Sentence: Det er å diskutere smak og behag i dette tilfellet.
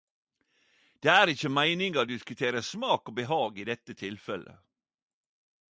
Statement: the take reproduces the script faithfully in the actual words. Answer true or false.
false